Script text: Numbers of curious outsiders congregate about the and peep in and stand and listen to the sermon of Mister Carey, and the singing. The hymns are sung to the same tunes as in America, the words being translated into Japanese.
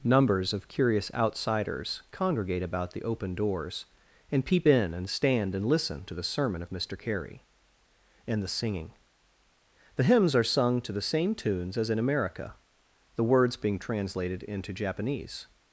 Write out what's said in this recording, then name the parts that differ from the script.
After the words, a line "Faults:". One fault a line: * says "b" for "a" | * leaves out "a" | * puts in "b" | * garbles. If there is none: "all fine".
Numbers of curious outsiders congregate about the open doors and peep in and stand and listen to the sermon of Mister Carey, and the singing. The hymns are sung to the same tunes as in America, the words being translated into Japanese.
Faults:
* puts in "open doors"